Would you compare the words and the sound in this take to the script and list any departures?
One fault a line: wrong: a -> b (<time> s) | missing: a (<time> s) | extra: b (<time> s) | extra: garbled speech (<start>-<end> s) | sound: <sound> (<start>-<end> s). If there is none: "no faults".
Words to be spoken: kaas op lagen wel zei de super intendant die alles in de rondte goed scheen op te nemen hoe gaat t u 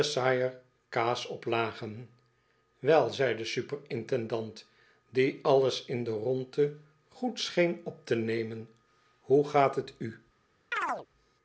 sound: chirp (10.7-11.1 s)